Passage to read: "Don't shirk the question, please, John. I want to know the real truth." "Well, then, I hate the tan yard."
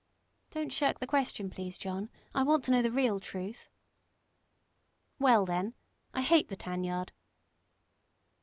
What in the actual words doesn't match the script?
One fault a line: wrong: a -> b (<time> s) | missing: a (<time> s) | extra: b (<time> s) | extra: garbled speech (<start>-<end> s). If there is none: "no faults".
no faults